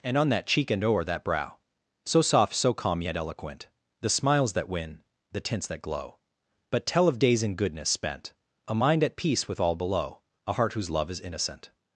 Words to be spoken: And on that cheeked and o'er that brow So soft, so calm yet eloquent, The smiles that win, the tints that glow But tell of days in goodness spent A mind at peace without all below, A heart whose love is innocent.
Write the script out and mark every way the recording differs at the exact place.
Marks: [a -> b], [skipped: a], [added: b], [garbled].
And on that [cheeked -> cheek] and o'er that brow So soft, so calm yet eloquent, The smiles that win, the tints that glow But tell of days in goodness spent A mind at peace [without -> with] all below, A heart whose love is innocent.